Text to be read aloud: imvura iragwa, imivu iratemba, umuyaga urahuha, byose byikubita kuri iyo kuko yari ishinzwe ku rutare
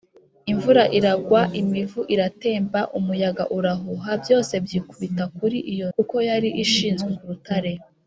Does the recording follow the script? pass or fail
pass